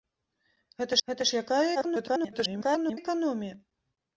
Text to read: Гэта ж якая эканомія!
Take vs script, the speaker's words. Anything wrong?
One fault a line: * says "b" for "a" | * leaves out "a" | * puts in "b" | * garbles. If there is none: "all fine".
* puts in "гэта"
* garbles